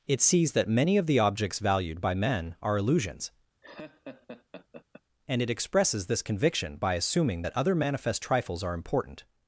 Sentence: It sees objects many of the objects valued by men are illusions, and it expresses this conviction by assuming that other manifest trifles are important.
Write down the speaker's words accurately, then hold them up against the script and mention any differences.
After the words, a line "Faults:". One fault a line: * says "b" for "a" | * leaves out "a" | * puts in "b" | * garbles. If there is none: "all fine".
It sees that many of the objects valued by men are illusions, and it expresses this conviction by assuming that other manifest trifles are important.
Faults:
* says "that" for "objects"